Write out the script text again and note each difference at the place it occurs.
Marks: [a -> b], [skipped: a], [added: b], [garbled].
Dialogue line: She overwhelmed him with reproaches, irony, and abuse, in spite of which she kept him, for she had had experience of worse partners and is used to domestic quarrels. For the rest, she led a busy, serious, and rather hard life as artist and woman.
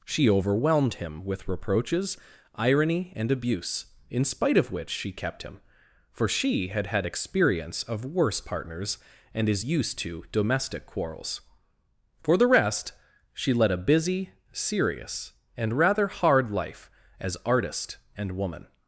She overwhelmed him with reproaches, irony, and abuse, in spite of which she kept him, for she had had experience of worse partners and is used to domestic quarrels. For the rest, she led a busy, serious, and rather hard life as artist and woman.